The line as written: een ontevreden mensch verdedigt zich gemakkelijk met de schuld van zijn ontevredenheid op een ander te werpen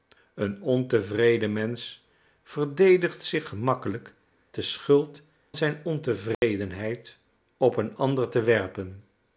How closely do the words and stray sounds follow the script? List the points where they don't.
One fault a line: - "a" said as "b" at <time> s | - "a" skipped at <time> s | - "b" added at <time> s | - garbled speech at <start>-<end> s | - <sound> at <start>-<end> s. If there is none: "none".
- "met" skipped at 4.1 s
- "van" skipped at 5.2 s
- dropout at 6.3-6.4 s